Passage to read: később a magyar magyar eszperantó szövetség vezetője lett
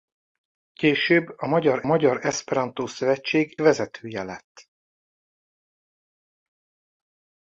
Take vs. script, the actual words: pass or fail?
pass